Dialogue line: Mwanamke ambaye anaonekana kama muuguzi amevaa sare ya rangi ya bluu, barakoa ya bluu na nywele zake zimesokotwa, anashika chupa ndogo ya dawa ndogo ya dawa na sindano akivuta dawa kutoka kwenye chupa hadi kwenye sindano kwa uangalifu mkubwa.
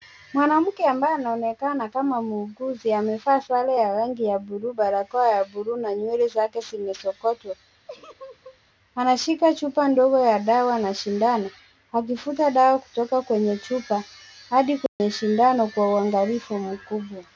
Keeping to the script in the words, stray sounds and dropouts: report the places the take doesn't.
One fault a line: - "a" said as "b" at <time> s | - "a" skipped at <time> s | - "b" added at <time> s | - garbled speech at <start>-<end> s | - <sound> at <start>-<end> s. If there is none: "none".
- laugh at 7.9-8.6 s
- "ndogo ya dawa" skipped at 10.8 s
- dropout at 14.9-15.0 s